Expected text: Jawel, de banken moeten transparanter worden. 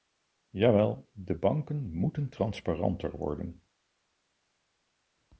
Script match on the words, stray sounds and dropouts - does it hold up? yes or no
yes